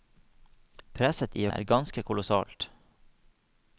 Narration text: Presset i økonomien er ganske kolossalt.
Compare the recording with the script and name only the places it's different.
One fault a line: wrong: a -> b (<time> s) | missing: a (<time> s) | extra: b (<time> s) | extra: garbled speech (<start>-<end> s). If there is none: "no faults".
missing: økonomien (1.4 s)